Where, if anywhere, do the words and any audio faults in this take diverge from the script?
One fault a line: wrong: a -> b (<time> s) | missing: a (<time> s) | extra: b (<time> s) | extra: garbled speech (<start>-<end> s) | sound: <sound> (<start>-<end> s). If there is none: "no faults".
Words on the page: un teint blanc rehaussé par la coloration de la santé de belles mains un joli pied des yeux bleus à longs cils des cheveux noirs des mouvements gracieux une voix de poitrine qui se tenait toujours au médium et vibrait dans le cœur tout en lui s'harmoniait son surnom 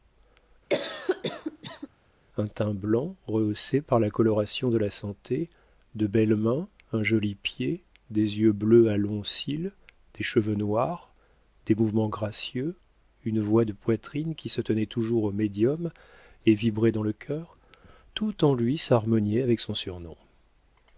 sound: cough (0.7-1.9 s)
extra: avec (19.4 s)